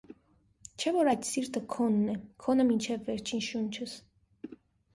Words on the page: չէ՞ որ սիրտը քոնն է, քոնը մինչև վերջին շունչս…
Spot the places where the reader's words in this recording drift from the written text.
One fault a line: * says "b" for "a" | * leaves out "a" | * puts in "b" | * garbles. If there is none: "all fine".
* puts in "այդ"